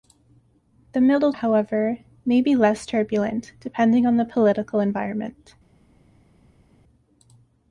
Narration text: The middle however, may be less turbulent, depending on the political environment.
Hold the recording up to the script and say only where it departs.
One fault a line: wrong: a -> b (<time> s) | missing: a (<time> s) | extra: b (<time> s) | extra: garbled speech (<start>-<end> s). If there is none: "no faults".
no faults